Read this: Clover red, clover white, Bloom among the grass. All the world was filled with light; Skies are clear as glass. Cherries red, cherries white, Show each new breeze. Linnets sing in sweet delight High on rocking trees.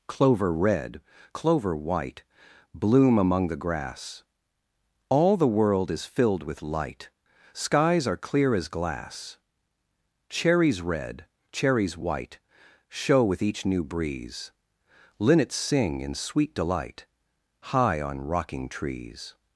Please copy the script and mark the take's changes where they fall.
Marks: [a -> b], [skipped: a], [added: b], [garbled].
Clover red, clover white, Bloom among the grass. All the world [was -> is] filled with light; Skies are clear as glass. Cherries red, cherries white, Show [added: with] each new breeze. Linnets sing in sweet delight High on rocking trees.